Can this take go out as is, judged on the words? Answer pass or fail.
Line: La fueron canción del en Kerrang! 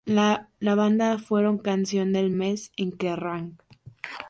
fail